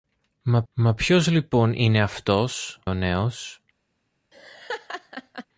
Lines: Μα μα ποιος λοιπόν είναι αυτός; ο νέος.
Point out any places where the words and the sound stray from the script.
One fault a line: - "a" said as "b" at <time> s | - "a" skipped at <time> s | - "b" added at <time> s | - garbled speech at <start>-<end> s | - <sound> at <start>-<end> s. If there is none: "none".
- laugh at 4.3-5.5 s